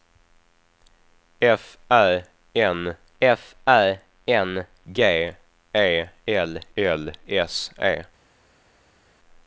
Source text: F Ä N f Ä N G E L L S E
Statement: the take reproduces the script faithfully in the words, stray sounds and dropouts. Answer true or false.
true